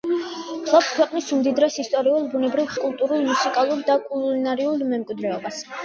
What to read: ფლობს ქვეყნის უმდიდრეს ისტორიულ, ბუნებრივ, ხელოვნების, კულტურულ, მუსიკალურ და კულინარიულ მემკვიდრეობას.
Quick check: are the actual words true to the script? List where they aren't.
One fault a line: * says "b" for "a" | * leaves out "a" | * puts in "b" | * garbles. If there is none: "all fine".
* leaves out "ხელოვნების"